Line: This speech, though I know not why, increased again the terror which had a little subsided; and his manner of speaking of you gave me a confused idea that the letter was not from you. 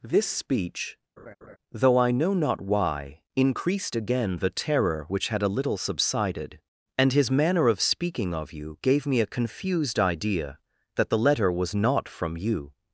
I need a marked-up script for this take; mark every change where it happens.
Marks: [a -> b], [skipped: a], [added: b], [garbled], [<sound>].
This speech, [laugh] though I know not why, increased again the terror which had a little subsided; and his manner of speaking of you gave me a confused idea that the letter was not from you.